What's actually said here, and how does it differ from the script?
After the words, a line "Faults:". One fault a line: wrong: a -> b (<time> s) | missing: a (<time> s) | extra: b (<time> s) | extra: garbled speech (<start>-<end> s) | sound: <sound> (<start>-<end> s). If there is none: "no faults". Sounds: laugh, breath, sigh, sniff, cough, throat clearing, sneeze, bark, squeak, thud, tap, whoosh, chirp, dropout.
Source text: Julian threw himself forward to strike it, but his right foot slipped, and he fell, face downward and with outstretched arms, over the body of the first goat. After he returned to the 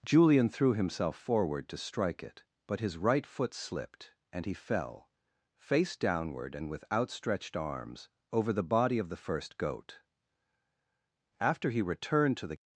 Julian threw himself forward to strike it, but his right foot slipped, and he fell, face downward and with outstretched arms, over the body of the first goat. After he returned to the
Faults:
no faults